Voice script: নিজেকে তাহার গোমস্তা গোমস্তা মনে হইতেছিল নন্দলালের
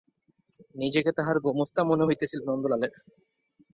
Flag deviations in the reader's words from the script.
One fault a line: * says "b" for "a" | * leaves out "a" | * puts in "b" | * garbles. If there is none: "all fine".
* leaves out "গোমস্তা"